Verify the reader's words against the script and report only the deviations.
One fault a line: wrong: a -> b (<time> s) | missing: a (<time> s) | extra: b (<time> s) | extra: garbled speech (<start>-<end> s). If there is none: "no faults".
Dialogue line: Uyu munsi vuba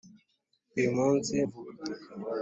no faults